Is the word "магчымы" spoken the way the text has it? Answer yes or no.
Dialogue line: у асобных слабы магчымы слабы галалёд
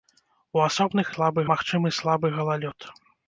yes